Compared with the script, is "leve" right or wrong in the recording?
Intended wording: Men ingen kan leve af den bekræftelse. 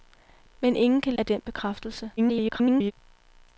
wrong